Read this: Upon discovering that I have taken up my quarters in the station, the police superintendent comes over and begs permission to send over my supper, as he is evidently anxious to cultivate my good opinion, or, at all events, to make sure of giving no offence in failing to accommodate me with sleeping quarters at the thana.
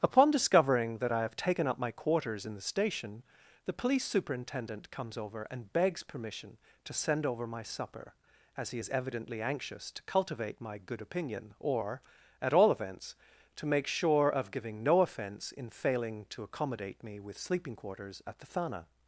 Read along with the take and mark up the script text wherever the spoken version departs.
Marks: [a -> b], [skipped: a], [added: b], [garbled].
Upon discovering that I have taken up my quarters in the station, the police superintendent comes over and begs permission to send over my supper, as he is evidently anxious to cultivate my good opinion, or, at all events, to make sure of giving no offence in failing to accommodate me with sleeping quarters at the thana.